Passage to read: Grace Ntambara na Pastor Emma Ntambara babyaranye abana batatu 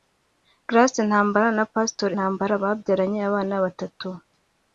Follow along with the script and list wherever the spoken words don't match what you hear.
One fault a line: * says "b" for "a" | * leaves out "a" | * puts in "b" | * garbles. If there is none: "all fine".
* leaves out "Emma"